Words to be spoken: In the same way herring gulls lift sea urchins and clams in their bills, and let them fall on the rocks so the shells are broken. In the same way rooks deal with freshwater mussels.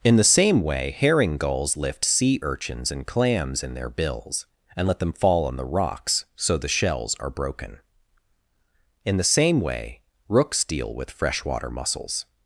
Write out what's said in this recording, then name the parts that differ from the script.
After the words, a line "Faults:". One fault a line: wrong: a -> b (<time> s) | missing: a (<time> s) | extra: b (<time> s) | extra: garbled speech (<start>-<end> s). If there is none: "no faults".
In the same way herring gulls lift sea urchins and clams in their bills, and let them fall on the rocks so the shells are broken. In the same way rooks deal with freshwater mussels.
Faults:
no faults